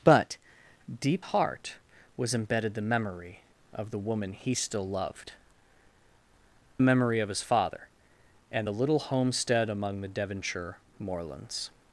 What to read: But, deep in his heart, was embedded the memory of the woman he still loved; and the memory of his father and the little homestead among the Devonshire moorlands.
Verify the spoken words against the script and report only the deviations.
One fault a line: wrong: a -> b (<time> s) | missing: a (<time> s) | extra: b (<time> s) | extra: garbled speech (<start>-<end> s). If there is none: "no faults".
missing: in his (1.2 s)
missing: and (5.3 s)